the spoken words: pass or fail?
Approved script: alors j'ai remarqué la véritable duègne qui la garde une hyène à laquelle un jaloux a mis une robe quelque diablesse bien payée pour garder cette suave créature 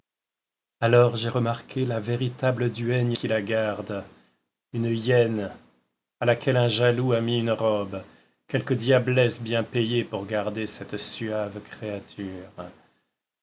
pass